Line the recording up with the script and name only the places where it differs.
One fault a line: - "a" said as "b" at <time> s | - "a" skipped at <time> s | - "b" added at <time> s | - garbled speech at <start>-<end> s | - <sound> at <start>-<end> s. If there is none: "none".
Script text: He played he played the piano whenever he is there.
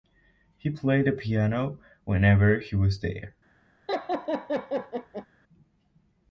- "he played" skipped at 1.1 s
- "is" said as "was" at 2.7 s
- laugh at 3.9-5.3 s